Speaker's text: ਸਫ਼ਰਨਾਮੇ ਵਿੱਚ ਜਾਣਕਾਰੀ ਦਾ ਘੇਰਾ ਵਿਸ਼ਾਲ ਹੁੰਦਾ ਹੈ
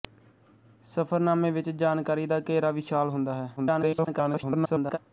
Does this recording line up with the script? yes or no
no